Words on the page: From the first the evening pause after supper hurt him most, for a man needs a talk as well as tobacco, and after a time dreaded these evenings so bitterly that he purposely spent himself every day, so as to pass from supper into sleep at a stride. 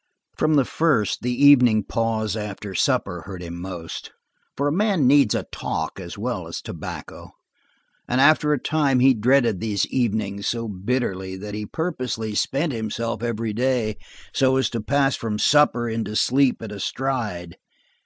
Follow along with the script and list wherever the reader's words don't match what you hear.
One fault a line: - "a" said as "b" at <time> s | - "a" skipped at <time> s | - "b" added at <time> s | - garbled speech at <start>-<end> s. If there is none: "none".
- "he" added at 9.0 s